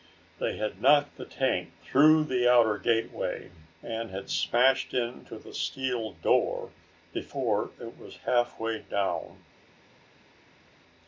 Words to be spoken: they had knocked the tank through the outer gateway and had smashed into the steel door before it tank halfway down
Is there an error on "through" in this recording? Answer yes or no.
no